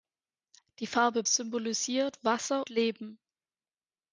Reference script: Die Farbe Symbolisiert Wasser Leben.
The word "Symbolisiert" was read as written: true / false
true